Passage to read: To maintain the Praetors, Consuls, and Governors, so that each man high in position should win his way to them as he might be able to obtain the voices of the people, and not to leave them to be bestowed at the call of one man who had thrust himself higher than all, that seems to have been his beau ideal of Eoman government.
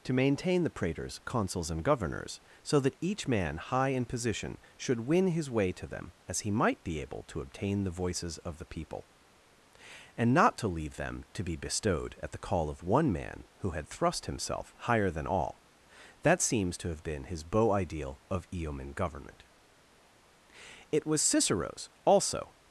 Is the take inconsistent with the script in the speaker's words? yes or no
yes